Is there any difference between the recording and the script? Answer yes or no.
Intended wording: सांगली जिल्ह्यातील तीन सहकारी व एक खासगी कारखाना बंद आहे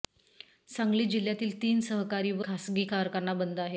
yes